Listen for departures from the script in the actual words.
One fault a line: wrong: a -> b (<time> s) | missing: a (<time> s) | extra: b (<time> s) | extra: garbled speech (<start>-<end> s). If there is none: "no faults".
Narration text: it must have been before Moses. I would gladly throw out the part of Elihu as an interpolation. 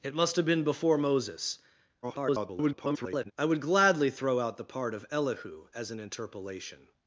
extra: garbled speech (2.0-3.3 s)